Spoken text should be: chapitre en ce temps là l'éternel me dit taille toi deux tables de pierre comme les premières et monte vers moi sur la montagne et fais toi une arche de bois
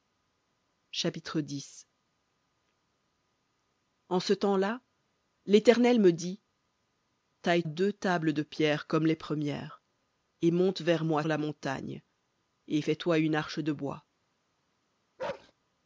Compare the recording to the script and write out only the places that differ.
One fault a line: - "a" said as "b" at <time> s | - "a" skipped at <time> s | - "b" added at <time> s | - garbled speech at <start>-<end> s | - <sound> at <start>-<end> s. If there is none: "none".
- "toi" skipped at 7.6 s
- "sur" skipped at 11.2 s
- bark at 15.2-15.5 s